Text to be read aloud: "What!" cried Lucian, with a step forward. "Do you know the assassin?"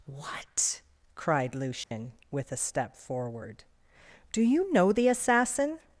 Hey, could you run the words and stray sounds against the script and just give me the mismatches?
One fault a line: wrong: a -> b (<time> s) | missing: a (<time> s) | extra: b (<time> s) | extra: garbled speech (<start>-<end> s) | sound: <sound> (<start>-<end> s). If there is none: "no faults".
sound: dropout (1.8-1.9 s)